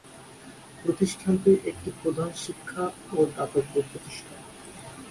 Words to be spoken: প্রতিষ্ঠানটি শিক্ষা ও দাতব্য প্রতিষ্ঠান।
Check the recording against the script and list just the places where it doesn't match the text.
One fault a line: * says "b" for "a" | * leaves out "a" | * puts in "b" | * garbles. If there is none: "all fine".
* puts in "একটি প্রধান"